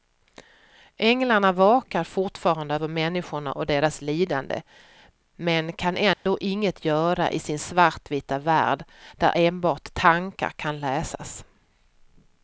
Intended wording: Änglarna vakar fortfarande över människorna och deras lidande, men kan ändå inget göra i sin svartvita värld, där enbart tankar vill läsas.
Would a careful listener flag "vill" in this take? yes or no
yes